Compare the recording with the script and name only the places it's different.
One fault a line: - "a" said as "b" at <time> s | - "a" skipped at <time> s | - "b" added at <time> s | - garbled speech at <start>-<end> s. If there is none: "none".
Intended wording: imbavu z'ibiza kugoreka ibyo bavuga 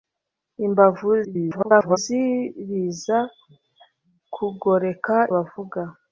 - garbled speech at 1.2-2.0 s
- "ibyo" skipped at 5.2 s